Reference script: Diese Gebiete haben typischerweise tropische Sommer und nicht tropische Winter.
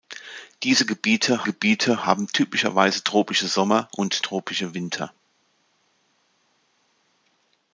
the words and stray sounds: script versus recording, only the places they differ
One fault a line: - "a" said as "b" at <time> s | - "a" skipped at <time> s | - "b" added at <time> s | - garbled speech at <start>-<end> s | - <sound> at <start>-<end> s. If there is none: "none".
- "Gebiete" added at 1.4 s
- "nicht" skipped at 4.2 s